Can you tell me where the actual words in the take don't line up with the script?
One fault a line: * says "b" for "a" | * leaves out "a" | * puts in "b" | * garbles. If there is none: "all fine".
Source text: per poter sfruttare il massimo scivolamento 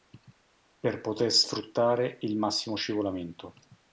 all fine